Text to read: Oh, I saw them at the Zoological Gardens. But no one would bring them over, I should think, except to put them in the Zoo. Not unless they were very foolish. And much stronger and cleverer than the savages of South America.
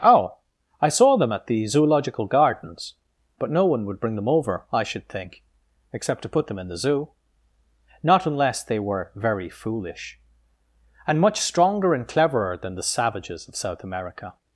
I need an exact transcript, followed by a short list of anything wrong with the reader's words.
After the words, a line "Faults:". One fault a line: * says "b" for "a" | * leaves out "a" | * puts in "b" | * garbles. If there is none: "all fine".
Oh, I saw them at the Zoological Gardens. But no one would bring them over, I should think, except to put them in the Zoo. Not unless they were very foolish. And much stronger and cleverer than the savages of South America.
Faults:
all fine